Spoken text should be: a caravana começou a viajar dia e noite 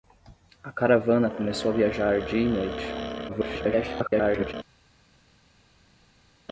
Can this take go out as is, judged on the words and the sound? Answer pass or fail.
fail